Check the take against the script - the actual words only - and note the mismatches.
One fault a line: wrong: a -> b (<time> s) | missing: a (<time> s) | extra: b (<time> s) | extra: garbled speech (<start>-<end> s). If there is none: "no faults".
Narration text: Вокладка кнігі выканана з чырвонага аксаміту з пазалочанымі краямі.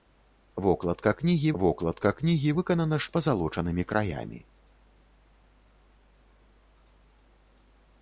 extra: вокладка кнігі (1.6 s)
missing: чырвонага аксаміту (3.1 s)